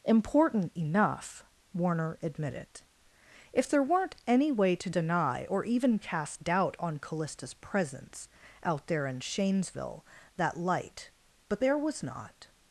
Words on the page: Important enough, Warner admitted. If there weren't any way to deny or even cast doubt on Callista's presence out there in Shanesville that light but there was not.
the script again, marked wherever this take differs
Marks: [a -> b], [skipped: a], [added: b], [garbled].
Important enough, Warner admitted. If there weren't any way to deny or even cast doubt on Callista's presence out there in Shanesville that light but there was not.